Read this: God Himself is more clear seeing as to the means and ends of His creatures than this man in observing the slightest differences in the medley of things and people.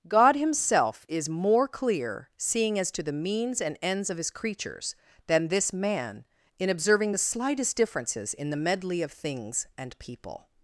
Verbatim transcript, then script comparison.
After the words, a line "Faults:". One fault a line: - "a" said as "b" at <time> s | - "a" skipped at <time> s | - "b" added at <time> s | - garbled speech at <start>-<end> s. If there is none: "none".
God Himself is more clear seeing as to the means and ends of His creatures than this man in observing the slightest differences in the medley of things and people.
Faults:
none